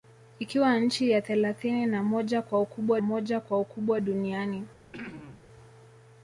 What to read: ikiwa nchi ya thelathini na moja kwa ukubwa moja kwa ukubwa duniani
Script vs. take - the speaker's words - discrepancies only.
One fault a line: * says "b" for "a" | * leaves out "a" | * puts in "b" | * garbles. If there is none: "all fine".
all fine